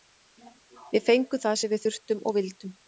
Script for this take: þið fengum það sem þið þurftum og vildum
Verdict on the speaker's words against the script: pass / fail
fail